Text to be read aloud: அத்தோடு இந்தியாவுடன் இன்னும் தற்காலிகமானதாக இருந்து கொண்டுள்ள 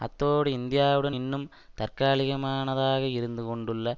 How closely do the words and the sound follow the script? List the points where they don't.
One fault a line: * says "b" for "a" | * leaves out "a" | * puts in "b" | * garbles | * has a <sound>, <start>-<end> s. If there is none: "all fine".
all fine